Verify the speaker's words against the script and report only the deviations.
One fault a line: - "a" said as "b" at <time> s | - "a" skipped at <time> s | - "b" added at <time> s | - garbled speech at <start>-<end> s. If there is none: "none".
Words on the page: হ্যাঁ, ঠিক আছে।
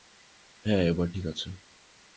- "এবার" added at 0.8 s